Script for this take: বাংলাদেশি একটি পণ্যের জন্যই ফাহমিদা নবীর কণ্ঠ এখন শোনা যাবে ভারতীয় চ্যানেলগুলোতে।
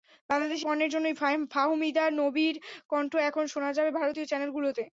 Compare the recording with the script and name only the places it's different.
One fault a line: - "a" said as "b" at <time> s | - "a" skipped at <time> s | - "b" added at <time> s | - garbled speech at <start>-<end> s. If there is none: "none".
- "একটি" skipped at 0.7 s